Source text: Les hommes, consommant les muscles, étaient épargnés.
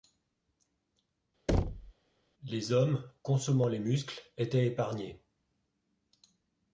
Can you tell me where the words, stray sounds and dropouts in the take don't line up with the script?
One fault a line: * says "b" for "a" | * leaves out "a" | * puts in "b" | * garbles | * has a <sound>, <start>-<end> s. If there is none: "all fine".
* has a thud, 1.5-1.9 s